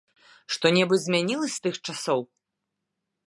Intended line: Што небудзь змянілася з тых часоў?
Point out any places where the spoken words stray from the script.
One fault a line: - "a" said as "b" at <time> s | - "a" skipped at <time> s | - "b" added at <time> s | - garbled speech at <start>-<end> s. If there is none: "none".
none